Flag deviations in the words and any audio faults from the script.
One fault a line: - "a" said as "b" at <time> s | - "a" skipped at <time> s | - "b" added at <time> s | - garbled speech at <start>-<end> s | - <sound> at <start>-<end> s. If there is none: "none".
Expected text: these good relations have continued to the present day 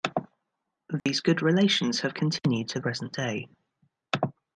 - dropout at 1.0-1.1 s
- "the" skipped at 2.8 s